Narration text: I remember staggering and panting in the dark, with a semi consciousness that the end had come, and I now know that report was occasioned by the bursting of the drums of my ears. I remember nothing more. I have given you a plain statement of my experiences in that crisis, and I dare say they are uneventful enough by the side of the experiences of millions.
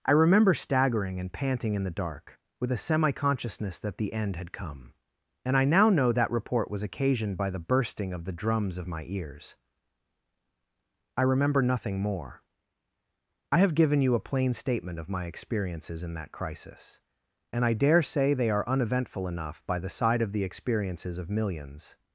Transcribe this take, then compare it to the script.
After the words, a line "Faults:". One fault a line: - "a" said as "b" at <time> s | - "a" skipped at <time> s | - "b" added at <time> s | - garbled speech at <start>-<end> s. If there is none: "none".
I remember staggering and panting in the dark, with a semi consciousness that the end had come, and I now know that report was occasioned by the bursting of the drums of my ears. I remember nothing more. I have given you a plain statement of my experiences in that crisis, and I dare say they are uneventful enough by the side of the experiences of millions.
Faults:
none